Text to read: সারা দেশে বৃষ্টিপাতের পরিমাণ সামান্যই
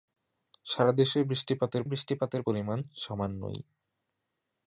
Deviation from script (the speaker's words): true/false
true